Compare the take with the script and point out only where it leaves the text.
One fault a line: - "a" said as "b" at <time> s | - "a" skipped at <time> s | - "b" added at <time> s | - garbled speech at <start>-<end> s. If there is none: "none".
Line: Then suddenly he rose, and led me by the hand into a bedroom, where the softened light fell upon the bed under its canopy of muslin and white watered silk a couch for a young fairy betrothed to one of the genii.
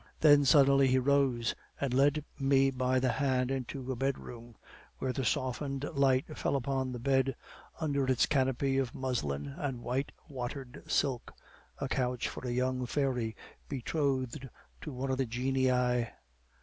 none